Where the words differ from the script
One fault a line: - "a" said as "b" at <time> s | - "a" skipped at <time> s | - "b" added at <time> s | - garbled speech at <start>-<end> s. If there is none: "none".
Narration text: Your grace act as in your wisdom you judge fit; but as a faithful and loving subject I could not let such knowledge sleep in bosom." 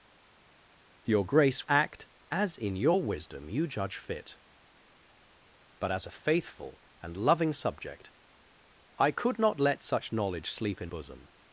none